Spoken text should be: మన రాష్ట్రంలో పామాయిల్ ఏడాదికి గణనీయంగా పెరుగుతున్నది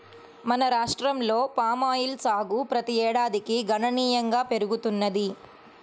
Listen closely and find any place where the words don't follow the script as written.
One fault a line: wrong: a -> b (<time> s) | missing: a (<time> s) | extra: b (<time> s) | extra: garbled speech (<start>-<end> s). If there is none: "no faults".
extra: సాగు ప్రతి (2.2 s)